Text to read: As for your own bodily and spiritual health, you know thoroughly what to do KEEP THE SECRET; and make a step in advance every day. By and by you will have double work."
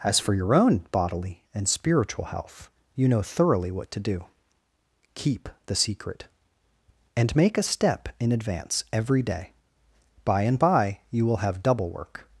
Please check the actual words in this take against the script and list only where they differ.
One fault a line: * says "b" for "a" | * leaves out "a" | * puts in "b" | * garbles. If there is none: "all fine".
all fine